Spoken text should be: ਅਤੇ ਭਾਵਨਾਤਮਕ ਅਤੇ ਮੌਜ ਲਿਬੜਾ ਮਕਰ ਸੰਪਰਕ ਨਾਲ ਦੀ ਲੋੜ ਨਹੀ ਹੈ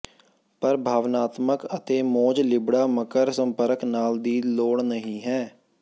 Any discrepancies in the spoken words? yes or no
yes